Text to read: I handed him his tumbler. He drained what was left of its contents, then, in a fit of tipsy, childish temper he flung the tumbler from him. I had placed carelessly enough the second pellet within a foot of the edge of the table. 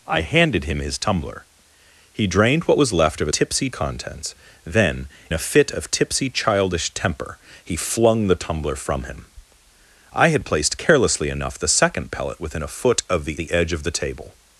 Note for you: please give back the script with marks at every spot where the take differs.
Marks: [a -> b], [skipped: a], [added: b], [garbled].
I handed him his tumbler. He drained what was left of [its -> tipsy] contents, then, [skipped: in] a fit of tipsy, childish temper he flung the tumbler from him. I had placed carelessly enough the second pellet within a foot of the [added: the] edge of the table.